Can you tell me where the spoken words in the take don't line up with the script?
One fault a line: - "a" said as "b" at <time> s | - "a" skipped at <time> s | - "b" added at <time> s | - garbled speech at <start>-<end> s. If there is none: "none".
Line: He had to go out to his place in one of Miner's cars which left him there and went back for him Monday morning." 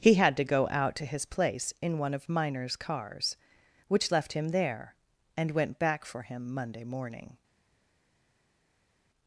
none